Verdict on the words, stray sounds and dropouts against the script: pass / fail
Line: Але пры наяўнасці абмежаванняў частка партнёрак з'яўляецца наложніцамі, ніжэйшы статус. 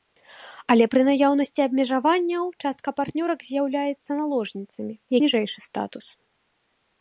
pass